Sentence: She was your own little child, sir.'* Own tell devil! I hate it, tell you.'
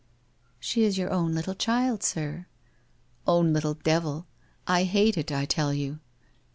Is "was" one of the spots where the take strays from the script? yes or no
yes